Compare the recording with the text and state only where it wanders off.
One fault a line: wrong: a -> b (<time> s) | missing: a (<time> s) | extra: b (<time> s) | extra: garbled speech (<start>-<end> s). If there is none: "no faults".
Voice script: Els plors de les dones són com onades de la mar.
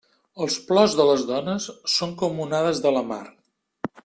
no faults